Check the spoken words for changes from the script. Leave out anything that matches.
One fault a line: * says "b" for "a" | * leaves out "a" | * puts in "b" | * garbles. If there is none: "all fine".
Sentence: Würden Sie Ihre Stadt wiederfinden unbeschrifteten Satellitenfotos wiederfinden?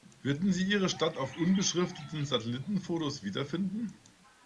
* says "auf" for "wiederfinden"